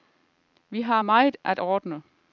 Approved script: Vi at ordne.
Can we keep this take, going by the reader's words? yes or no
no